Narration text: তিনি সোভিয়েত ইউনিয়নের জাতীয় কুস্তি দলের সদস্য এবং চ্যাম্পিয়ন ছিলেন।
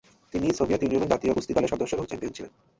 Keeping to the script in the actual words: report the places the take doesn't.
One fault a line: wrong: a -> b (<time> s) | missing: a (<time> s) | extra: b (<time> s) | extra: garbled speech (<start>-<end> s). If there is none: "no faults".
no faults